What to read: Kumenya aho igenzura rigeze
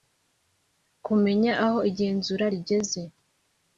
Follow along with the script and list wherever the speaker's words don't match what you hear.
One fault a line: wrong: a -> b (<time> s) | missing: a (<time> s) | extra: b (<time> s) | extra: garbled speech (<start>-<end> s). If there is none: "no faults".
no faults